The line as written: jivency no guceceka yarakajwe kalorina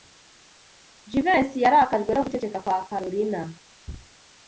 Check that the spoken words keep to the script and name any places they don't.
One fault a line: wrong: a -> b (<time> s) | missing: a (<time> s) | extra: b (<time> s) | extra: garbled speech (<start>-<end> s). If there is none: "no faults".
extra: yarakajwe (1.6 s)
wrong: yarakajwe -> kwa (2.6 s)